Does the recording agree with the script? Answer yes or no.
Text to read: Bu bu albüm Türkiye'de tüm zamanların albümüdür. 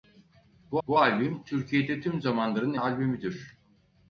yes